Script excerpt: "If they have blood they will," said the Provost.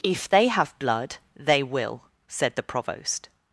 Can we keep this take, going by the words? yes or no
yes